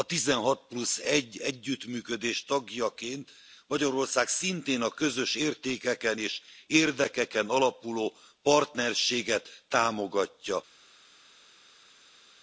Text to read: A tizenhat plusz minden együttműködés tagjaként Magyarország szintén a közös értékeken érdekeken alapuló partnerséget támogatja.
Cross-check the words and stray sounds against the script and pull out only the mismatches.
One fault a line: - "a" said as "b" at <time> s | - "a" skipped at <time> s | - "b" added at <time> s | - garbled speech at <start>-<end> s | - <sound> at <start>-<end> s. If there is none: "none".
- "minden" said as "egy" at 1.0 s
- "és" added at 6.2 s